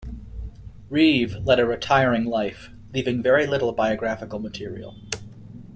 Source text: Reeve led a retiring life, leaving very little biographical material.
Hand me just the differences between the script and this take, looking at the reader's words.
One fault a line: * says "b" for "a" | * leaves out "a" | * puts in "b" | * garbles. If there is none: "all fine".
all fine